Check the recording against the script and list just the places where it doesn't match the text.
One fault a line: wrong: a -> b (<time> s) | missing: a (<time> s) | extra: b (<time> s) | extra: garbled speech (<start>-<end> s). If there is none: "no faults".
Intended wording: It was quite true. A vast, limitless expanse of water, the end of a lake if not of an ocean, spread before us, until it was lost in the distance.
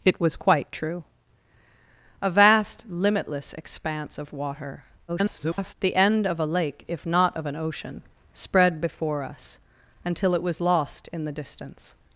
extra: garbled speech (5.1-5.7 s)